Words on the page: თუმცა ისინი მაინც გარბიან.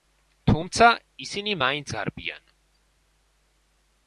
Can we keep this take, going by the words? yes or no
yes